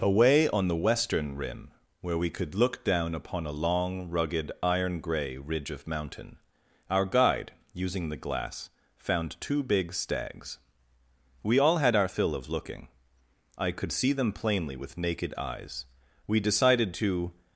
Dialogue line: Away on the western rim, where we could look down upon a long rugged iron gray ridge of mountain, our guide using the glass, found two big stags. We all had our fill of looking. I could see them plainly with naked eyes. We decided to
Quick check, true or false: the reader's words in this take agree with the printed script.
true